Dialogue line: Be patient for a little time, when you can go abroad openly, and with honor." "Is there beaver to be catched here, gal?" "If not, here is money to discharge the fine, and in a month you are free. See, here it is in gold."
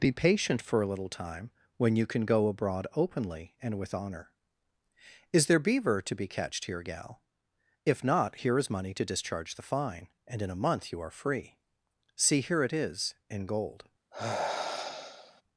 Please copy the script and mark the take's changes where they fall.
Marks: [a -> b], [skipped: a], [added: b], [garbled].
Be patient for a little time, when you can go abroad openly, and with honor." "Is there beaver to be catched here, gal?" "If not, here is money to discharge the fine, and in a month you are free. See, here it is in gold."